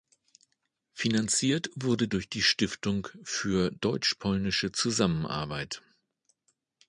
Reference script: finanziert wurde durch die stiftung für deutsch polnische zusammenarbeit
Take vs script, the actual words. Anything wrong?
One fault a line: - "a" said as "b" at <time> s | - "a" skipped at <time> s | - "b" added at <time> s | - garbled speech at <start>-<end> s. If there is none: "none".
none